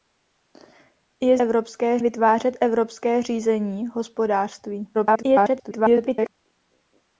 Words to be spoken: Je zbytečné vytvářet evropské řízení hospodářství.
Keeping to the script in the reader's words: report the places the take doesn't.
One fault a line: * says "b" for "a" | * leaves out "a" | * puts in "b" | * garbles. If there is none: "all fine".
* says "evropské" for "zbytečné"
* garbles